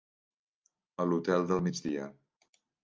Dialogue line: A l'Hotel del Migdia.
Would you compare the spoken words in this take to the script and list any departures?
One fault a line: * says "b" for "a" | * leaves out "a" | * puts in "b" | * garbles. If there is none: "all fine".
all fine